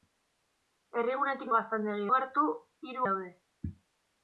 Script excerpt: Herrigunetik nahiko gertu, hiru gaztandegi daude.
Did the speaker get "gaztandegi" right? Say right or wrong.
wrong